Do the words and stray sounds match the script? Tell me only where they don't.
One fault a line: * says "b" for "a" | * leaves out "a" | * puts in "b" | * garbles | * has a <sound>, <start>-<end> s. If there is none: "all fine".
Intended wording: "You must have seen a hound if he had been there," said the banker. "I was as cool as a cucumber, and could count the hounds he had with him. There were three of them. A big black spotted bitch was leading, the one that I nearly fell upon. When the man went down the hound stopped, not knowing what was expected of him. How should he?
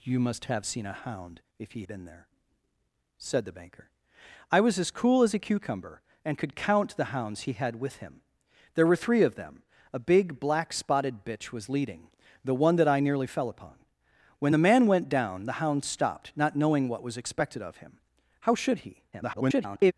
* leaves out "had"
* garbles